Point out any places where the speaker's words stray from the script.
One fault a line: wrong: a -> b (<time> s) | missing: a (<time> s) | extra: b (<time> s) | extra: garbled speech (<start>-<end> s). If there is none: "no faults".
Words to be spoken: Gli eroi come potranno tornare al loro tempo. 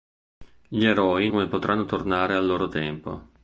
no faults